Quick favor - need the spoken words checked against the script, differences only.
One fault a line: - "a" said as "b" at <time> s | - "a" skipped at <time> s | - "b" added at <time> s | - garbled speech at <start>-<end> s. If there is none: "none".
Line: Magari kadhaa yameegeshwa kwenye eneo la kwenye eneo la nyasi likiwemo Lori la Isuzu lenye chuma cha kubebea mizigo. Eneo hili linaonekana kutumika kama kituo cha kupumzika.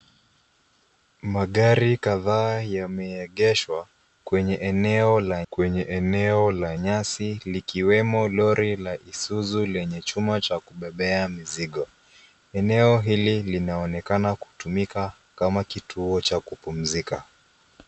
none